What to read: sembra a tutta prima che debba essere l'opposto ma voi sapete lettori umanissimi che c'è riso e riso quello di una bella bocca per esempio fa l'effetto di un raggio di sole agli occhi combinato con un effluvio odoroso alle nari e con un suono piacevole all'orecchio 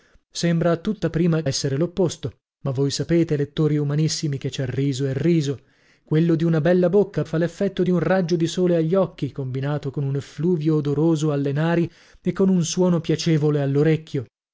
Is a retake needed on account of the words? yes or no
yes